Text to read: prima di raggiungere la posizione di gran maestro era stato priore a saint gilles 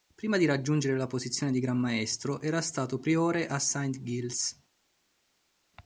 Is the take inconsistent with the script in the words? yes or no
no